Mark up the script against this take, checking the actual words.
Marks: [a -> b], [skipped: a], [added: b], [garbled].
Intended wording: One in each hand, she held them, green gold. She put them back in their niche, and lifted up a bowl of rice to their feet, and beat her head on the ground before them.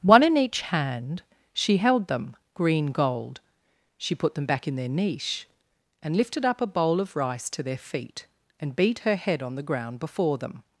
One in each hand, she held them, green gold. She put them back in their niche, and lifted up a bowl of rice to their feet, and beat her head on the ground before them.